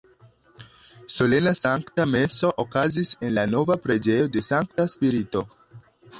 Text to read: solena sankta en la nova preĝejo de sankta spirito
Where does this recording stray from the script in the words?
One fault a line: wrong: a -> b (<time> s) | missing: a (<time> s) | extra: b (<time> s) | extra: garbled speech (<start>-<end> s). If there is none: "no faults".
extra: meso okazis (2.1 s)